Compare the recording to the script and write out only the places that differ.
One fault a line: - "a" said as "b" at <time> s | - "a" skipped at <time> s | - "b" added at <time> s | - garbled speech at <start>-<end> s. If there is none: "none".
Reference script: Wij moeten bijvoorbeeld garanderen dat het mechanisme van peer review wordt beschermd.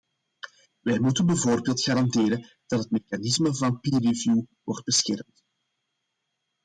none